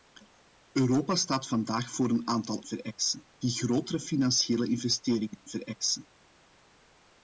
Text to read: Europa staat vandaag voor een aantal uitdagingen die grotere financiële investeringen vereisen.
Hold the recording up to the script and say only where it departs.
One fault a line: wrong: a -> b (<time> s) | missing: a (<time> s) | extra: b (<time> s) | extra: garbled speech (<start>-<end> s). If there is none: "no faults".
wrong: uitdagingen -> vereisen (2.6 s)